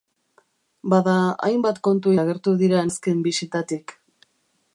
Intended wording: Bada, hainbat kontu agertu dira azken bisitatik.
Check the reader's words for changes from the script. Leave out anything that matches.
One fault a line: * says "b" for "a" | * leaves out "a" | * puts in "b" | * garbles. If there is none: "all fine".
all fine